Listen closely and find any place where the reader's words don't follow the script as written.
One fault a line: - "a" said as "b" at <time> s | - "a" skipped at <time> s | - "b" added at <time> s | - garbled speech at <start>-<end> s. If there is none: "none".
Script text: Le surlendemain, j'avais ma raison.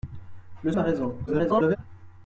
- "surlendemain j'avais" skipped at 0.7 s
- garbled speech at 1.3-1.8 s